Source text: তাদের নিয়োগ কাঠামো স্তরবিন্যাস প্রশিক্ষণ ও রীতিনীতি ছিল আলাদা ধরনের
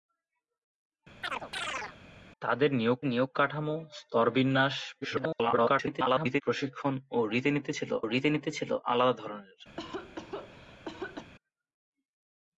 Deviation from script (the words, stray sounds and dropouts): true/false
true